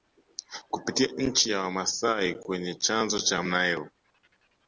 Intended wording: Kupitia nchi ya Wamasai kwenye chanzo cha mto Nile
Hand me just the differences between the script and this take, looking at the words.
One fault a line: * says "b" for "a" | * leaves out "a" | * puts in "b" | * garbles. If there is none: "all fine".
* leaves out "mto"